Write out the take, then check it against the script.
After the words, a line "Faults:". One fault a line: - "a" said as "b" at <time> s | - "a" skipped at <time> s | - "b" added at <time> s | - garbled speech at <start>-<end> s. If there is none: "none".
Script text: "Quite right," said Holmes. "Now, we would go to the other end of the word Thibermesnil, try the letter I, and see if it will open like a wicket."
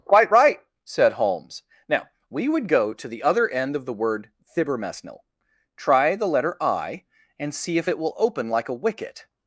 "Quite right," said Holmes. "Now, we would go to the other end of the word Thibermesnil, try the letter I, and see if it will open like a wicket."
Faults:
none